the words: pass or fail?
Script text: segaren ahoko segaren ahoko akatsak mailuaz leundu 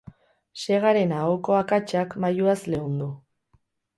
fail